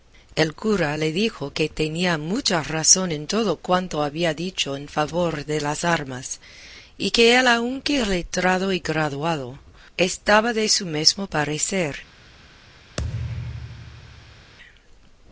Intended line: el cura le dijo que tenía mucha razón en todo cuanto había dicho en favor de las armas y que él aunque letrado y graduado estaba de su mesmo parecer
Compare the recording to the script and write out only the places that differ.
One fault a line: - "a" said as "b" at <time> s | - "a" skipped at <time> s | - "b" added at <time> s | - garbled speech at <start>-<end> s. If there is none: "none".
none